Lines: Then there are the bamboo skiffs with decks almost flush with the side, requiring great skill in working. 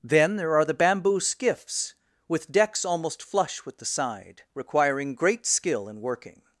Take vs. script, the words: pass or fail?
pass